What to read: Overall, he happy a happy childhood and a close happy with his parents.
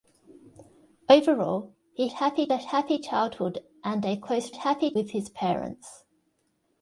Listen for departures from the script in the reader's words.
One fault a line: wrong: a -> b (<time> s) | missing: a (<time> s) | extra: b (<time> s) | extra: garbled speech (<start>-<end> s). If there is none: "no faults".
no faults